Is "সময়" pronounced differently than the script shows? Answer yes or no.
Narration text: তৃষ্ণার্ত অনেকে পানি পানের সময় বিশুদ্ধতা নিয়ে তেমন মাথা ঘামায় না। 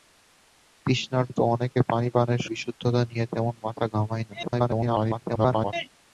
yes